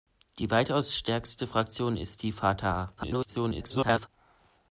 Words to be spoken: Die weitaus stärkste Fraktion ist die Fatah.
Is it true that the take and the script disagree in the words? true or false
true